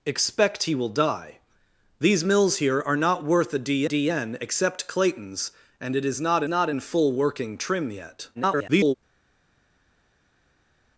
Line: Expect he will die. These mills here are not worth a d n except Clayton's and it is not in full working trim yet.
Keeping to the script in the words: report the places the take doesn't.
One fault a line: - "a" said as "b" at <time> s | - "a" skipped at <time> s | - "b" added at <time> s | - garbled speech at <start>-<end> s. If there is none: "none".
- "d" added at 3.8 s
- "not" added at 6.5 s
- garbled speech at 8.3-8.9 s